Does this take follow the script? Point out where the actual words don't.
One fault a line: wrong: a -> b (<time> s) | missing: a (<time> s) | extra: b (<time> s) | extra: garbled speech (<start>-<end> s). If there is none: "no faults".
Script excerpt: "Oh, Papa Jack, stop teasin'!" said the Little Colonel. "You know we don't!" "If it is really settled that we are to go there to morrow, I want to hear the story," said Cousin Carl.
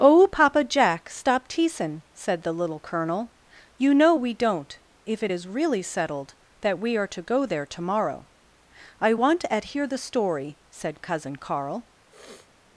wrong: to -> at (9.5 s)